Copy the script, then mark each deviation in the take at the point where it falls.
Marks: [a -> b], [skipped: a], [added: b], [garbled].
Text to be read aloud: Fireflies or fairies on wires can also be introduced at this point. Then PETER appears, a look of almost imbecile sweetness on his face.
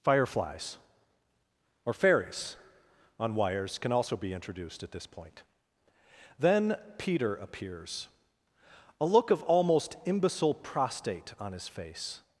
Fireflies or fairies on wires can also be introduced at this point. Then PETER appears, a look of almost imbecile [sweetness -> prostate] on his face.